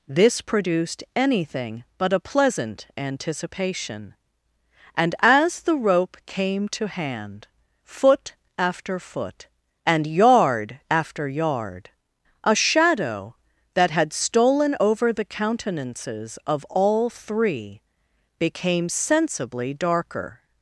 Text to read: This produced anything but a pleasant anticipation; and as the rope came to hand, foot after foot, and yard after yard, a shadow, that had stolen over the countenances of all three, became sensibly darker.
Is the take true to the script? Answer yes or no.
yes